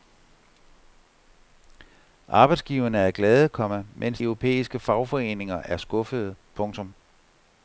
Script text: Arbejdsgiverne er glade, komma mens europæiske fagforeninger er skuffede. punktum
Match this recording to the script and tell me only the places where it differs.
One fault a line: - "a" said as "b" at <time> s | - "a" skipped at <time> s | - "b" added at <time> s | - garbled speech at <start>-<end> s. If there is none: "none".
none